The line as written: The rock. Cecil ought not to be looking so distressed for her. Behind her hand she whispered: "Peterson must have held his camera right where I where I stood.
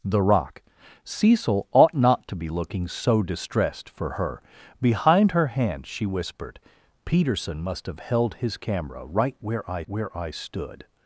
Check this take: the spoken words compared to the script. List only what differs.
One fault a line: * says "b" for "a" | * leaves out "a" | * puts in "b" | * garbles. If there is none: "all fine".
all fine